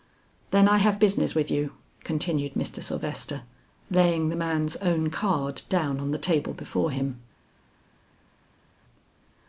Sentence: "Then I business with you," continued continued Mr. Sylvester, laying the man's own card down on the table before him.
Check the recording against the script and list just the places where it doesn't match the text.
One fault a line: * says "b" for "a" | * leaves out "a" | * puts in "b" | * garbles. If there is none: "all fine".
* puts in "have"
* leaves out "continued"